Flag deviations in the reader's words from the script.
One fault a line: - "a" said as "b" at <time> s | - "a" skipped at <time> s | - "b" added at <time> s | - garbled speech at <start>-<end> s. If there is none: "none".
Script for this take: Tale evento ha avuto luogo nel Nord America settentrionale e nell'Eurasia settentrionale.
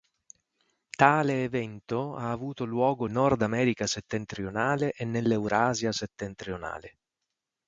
- "nel" skipped at 3.0 s